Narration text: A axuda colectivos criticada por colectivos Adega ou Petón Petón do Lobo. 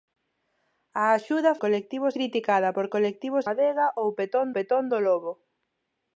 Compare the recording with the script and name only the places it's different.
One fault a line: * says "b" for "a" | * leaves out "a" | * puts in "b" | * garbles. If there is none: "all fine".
all fine